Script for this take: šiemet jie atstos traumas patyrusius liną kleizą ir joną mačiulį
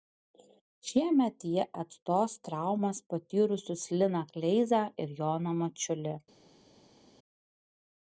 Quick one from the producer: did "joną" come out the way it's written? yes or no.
yes